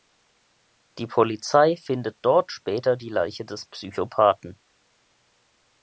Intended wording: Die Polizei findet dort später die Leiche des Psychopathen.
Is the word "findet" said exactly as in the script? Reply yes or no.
yes